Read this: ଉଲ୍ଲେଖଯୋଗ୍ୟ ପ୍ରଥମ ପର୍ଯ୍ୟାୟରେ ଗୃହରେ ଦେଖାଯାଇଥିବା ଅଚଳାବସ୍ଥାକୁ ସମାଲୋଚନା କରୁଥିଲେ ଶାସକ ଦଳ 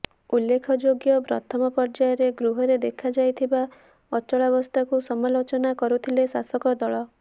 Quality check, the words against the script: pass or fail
pass